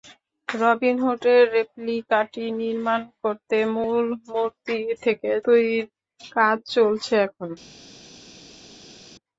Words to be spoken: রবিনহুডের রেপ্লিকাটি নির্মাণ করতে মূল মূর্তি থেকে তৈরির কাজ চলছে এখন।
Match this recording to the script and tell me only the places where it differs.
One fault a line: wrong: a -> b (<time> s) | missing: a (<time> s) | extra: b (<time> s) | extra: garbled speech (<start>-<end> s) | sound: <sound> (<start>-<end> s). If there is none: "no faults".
no faults